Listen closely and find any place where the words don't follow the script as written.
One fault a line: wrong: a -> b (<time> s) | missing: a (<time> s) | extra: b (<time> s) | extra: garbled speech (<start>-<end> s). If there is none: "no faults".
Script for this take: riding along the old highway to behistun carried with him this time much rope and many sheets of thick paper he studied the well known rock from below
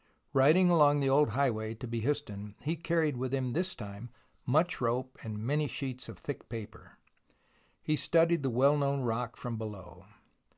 extra: he (2.6 s)